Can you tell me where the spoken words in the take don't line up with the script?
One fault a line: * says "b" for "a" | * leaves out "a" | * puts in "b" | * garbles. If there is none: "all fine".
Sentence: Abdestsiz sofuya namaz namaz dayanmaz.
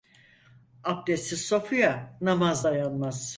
* leaves out "namaz"